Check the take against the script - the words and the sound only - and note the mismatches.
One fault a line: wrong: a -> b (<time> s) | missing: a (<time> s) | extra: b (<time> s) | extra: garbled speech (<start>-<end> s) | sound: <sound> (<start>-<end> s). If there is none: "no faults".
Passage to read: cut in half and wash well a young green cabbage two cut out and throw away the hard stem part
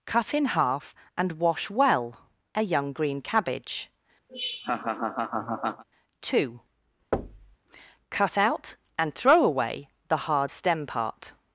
sound: laugh (4.3-5.8 s)
sound: thud (7.1-7.6 s)